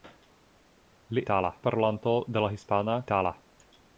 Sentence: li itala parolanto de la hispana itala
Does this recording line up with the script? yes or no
yes